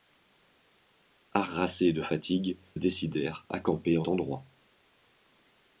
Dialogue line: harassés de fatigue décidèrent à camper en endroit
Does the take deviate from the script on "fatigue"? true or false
false